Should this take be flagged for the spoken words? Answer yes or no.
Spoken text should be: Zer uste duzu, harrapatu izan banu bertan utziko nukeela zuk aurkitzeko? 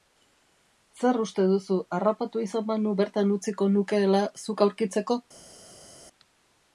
no